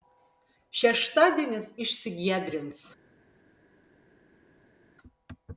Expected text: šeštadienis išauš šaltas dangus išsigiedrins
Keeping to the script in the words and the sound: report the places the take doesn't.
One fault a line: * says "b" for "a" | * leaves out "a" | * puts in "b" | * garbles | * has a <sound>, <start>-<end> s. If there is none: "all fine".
* leaves out "išauš šaltas dangus"